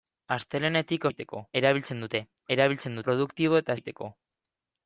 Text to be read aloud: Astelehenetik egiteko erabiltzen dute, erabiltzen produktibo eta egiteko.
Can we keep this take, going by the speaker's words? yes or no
yes